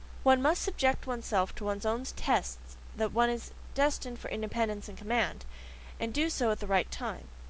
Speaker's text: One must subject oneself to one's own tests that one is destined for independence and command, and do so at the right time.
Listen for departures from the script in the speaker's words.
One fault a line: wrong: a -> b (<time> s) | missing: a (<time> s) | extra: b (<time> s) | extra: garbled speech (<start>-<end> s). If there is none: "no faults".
no faults